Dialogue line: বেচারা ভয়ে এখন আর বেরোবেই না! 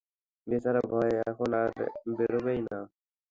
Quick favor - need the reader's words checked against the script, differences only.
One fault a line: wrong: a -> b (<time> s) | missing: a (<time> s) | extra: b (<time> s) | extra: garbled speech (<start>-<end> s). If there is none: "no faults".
no faults